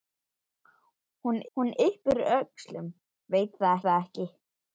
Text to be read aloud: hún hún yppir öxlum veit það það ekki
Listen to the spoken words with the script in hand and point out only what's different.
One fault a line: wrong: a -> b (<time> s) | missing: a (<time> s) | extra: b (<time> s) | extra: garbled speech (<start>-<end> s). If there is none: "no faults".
no faults